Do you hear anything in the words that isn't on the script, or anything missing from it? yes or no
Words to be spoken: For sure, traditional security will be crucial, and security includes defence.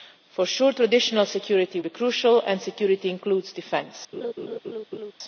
yes